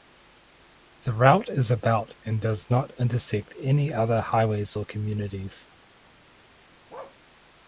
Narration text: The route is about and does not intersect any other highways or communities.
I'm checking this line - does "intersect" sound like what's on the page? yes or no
yes